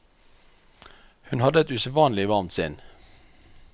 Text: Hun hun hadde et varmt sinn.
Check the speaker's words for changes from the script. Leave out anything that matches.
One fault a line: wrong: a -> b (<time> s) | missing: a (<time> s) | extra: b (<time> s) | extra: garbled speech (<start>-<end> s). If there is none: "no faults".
missing: hun (1.4 s)
extra: usedvanlig (1.7 s)